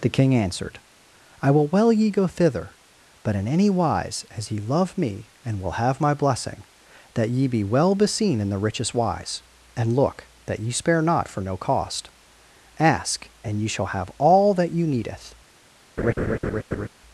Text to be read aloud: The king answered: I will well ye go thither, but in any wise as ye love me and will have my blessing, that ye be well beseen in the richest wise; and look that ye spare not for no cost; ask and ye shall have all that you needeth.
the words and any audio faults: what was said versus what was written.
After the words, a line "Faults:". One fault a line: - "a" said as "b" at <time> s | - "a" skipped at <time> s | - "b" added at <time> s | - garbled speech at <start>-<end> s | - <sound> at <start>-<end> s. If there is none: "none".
The king answered: I will well ye go thither, but in any wise as ye love me and will have my blessing, that ye be well beseen in the richest wise; and look that ye spare not for no cost; ask and ye shall have all that you needeth.
Faults:
- laugh at 16.0-16.9 s